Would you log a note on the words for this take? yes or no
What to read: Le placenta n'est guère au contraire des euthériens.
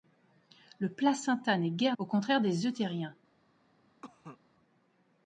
no